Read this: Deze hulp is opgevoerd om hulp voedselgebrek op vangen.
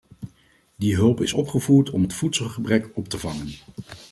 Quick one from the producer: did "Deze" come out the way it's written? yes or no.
no